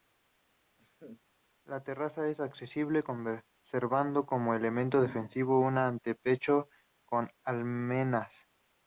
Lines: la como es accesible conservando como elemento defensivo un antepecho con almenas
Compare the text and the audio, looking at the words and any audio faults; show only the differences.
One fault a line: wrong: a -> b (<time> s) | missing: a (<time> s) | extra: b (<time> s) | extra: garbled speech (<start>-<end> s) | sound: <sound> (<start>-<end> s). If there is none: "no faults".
sound: laugh (0.8-1.2 s)
wrong: como -> terraza (1.8 s)